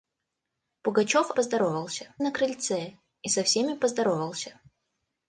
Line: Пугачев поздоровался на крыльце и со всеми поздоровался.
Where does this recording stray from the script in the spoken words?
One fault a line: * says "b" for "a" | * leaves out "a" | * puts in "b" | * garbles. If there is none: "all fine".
all fine